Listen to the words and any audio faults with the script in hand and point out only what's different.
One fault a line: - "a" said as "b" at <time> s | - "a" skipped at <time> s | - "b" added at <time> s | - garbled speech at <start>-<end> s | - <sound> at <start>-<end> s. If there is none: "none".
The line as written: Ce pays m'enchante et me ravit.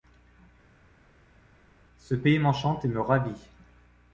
none